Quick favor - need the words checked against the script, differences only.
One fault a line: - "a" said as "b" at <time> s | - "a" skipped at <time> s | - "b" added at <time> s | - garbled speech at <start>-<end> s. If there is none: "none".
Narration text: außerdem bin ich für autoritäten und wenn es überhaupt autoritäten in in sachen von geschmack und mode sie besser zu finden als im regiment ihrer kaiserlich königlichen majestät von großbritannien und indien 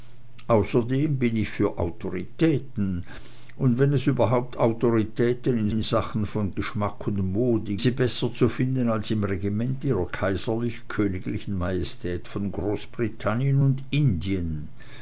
none